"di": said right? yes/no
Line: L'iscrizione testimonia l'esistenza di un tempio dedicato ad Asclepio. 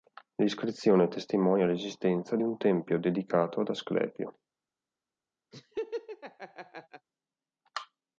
no